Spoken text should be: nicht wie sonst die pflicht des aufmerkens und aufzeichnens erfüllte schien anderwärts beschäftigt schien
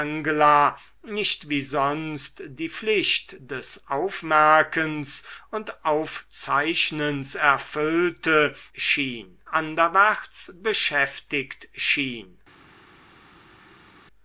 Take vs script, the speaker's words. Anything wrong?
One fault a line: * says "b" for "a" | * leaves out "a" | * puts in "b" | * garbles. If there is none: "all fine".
all fine